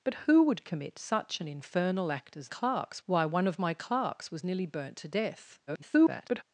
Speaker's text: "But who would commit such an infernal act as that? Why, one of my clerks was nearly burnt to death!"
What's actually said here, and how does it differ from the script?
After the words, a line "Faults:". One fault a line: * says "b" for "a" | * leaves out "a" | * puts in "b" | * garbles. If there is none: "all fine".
"But who would commit such an infernal act as clerks? Why, one of my clerks was nearly burnt to death!" [garbled]
Faults:
* says "clerks" for "that"
* garbles